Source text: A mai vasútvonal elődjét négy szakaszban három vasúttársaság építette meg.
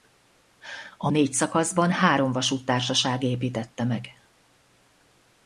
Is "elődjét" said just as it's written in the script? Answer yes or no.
no